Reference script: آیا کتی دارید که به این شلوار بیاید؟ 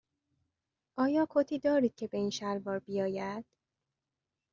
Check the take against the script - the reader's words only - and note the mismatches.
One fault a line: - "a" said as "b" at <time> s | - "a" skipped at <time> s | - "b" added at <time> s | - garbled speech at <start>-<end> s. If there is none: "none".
none